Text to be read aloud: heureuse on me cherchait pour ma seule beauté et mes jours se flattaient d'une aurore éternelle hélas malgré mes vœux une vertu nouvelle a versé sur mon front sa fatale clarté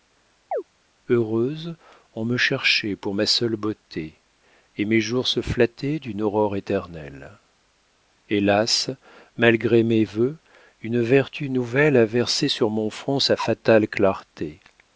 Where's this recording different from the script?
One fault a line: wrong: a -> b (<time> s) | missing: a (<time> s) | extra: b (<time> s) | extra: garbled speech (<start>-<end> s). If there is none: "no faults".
no faults